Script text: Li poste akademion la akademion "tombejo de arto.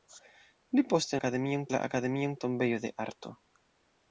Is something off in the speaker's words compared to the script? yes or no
no